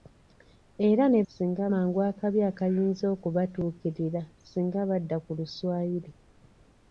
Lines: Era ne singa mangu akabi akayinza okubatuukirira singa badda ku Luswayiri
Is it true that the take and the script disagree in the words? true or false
false